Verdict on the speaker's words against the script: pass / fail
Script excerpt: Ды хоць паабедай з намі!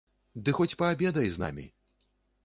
pass